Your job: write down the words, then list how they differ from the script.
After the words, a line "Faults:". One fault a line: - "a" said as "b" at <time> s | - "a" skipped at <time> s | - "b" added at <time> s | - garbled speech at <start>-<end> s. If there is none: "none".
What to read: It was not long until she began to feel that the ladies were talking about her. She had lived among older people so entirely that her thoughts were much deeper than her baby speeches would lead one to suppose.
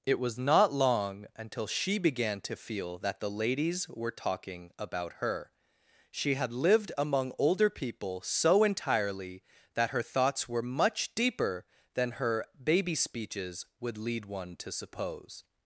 It was not long until she began to feel that the ladies were talking about her. She had lived among older people so entirely that her thoughts were much deeper than her baby speeches would lead one to suppose.
Faults:
none